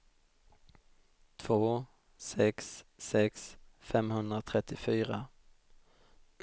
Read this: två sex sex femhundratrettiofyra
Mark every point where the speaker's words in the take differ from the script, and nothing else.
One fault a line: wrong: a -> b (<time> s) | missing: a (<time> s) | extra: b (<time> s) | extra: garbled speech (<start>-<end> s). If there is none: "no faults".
no faults